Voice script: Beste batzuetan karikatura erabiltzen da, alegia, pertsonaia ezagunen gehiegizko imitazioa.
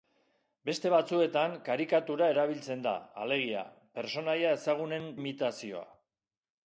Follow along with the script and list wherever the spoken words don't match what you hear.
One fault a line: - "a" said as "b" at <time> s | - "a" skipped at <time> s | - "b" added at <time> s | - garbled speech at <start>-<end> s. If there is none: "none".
- "gehiegizko" skipped at 5.1 s